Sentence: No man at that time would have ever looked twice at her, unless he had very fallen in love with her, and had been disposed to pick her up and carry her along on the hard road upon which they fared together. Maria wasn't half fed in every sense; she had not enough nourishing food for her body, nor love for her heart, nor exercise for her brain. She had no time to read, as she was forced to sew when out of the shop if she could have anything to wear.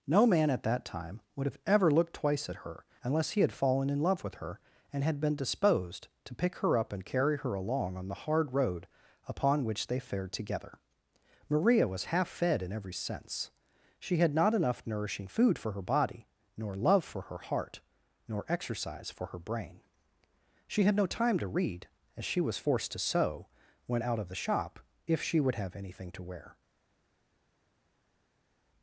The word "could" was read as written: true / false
false